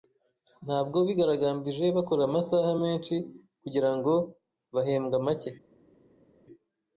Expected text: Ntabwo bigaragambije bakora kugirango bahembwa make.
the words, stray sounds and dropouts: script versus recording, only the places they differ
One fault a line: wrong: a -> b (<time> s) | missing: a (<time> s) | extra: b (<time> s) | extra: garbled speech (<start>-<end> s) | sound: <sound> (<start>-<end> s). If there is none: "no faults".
extra: amasaha menshi (2.3 s)